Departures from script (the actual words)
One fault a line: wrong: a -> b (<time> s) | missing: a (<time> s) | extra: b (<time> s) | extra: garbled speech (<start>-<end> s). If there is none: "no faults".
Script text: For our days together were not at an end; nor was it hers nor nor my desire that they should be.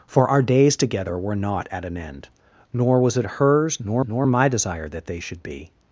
no faults